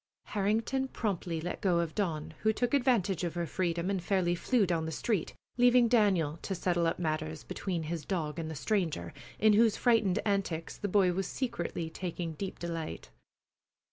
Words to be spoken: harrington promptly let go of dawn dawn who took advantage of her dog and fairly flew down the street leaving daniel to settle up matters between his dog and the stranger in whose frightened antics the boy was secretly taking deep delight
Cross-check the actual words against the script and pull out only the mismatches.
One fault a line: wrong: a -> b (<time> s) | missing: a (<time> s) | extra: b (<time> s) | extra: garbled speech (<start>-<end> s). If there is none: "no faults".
missing: dawn (2.3 s)
wrong: dog -> freedom (3.5 s)